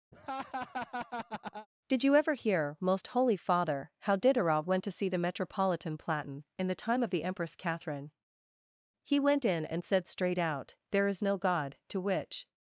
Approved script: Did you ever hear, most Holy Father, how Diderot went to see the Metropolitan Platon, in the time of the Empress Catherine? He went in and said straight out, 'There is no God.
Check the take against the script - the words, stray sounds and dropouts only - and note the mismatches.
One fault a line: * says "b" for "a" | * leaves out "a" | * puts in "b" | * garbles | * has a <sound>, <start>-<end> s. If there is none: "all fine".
* has a laugh, 0.1-1.7 s
* puts in "To which"